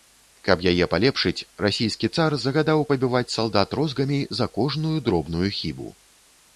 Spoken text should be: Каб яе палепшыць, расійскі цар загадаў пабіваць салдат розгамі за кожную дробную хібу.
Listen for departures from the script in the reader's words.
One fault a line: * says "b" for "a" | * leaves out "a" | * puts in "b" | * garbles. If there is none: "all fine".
all fine